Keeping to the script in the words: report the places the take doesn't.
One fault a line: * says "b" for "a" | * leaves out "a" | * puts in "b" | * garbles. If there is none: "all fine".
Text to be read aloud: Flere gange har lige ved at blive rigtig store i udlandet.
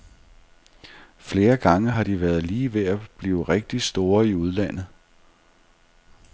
* puts in "de været"